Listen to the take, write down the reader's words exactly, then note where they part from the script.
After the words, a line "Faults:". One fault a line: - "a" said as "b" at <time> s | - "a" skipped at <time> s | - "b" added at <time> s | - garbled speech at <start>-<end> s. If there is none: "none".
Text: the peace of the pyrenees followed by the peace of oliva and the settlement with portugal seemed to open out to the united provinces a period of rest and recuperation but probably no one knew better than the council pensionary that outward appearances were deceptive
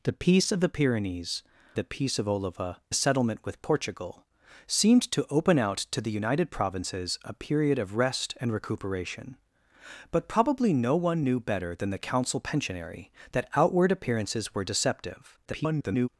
the peace of the pyrenees the peace of oliva the settlement with portugal seemed to open out to the united provinces a period of rest and recuperation but probably no one knew better than the council pensionary that outward appearances were deceptive [garbled]
Faults:
- "followed by" skipped at 1.4 s
- "and" skipped at 2.8 s
- garbled speech at 15.4-16.1 s